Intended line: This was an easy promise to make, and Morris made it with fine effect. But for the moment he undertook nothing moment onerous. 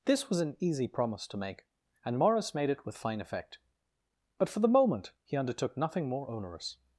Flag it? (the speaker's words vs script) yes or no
yes